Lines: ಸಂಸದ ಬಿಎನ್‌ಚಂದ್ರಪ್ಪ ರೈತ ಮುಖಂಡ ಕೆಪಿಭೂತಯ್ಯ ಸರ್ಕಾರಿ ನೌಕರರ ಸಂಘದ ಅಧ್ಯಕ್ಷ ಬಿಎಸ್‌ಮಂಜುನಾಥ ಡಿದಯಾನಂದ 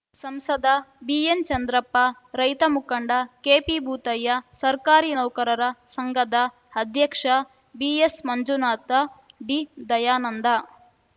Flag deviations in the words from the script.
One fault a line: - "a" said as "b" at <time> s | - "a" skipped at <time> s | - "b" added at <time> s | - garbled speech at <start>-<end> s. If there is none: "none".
none